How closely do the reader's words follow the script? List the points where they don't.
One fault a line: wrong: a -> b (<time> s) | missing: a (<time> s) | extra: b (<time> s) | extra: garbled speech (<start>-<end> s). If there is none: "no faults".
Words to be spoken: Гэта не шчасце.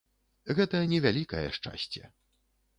extra: вялікае (1.1 s)